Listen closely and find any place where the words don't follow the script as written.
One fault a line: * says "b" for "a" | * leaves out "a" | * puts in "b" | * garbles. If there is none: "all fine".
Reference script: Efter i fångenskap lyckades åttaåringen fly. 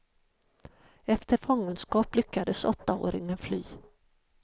all fine